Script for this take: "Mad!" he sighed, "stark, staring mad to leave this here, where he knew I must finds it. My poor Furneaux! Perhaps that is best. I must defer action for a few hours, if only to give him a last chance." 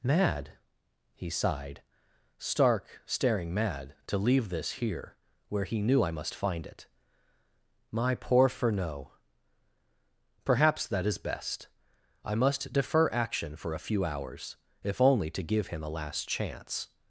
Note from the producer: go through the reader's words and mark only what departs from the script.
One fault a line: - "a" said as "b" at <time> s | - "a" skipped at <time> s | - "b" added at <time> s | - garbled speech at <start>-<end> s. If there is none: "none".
- "finds" said as "find" at 6.3 s